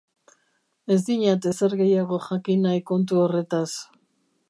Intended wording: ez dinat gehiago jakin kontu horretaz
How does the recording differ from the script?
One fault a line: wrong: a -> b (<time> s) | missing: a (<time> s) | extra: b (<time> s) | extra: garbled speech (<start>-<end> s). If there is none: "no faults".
extra: ezer (1.5 s)
extra: nahi (2.7 s)